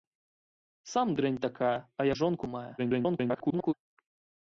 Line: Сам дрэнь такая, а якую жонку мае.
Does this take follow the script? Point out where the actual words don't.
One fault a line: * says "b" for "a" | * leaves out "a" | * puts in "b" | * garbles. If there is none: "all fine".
* leaves out "якую"
* garbles